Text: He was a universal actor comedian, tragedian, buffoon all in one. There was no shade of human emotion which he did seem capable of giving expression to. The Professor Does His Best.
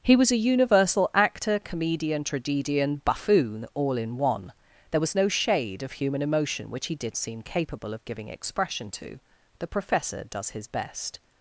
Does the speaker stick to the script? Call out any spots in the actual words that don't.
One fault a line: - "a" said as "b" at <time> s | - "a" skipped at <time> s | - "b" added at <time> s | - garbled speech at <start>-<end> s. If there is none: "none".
none